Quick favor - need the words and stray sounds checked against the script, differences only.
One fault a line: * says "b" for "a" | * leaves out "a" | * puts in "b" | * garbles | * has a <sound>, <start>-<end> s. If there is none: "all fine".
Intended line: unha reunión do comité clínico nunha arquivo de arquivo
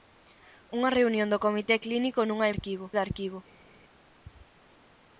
all fine